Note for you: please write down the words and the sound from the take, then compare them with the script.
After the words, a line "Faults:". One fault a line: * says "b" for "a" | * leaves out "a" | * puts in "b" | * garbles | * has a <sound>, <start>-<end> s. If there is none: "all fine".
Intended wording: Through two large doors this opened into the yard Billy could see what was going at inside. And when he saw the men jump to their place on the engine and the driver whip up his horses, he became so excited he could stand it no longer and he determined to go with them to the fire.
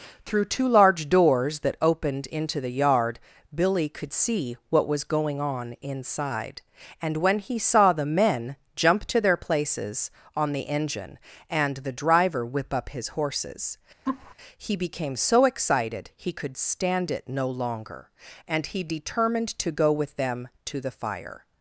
Through two large doors that opened into the yard Billy could see what was going on inside. And when he saw the men jump to their places on the engine and the driver whip up his horses, he became so excited he could stand it no longer and he determined to go with them to the fire.
Faults:
* says "that" for "this"
* says "on" for "at"
* says "places" for "place"
* has a laugh, 14.1-14.3 s